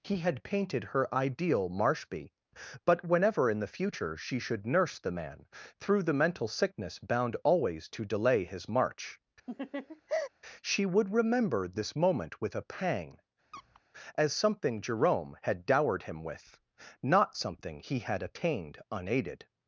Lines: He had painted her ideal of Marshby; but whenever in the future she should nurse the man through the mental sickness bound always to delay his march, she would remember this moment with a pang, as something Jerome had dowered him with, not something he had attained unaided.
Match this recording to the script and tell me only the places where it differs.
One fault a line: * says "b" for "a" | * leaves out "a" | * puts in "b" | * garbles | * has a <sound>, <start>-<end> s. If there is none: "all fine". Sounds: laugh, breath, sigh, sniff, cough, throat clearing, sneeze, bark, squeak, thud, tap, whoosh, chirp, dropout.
* leaves out "of"
* has a laugh, 9.5-10.3 s
* has a squeak, 13.5-13.8 s